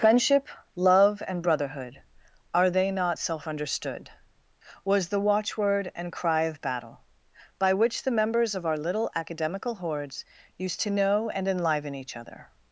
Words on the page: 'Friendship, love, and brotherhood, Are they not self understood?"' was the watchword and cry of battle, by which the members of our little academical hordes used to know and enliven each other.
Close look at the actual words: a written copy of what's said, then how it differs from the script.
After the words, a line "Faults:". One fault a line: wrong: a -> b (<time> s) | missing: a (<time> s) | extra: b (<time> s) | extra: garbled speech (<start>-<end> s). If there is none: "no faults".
'Friendship, love, and brotherhood, Are they not self understood?"' was the watchword and cry of battle, by which the members of our little academical hordes used to know and enliven each other.
Faults:
no faults